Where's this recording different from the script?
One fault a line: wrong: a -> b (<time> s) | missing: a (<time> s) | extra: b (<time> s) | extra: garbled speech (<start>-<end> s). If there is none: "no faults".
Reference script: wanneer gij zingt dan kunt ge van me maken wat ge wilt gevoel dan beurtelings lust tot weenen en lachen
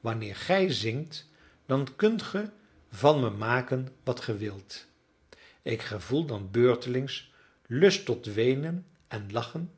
extra: ik (5.6 s)